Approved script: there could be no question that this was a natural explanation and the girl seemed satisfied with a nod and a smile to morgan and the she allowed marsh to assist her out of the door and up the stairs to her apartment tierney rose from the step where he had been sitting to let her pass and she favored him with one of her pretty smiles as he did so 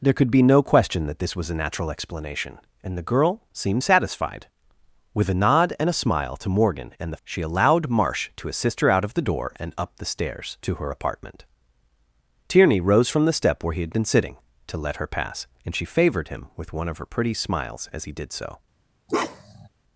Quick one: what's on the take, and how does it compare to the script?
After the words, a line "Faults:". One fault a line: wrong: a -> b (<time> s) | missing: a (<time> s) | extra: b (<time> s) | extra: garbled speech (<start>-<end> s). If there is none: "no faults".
there could be no question that this was a natural explanation and the girl seemed satisfied with a nod and a smile to morgan and the she allowed marsh to assist her out of the door and up the stairs to her apartment tierney rose from the step where he had been sitting to let her pass and she favored him with one of her pretty smiles as he did so
Faults:
no faults